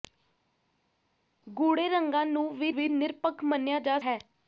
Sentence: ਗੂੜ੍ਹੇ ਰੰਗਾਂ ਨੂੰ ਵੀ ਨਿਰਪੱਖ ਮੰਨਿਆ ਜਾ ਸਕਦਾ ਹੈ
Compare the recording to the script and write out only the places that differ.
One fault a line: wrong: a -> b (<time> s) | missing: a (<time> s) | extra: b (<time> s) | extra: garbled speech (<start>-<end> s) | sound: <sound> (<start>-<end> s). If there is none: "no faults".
extra: ਵੀ (2.7 s)
missing: ਸਕਦਾ (4.0 s)